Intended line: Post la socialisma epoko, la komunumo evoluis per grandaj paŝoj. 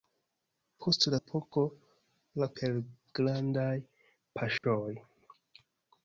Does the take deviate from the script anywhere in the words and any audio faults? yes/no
yes